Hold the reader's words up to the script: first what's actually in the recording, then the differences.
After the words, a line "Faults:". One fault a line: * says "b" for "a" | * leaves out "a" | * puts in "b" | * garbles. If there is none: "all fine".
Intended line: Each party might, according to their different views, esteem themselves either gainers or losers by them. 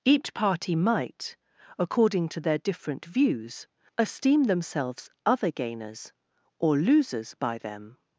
Each party might, according to their different views, esteem themselves other gainers or losers by them.
Faults:
* says "other" for "either"